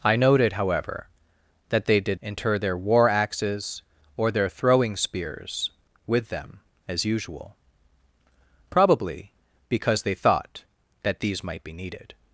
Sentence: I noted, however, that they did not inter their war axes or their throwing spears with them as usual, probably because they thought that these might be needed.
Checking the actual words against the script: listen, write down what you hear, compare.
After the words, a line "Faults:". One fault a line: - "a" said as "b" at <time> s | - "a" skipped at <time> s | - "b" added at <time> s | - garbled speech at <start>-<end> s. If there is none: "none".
I noted, however, that they did inter their war axes or their throwing spears with them as usual, probably because they thought that these might be needed.
Faults:
- "not" skipped at 2.2 s